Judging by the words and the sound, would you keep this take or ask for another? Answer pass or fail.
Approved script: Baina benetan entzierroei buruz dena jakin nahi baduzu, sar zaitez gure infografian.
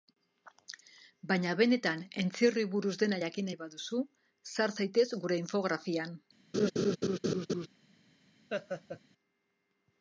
fail